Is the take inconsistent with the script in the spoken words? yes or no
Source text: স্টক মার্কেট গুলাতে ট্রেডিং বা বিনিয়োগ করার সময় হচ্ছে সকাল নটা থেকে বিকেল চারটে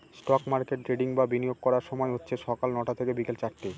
yes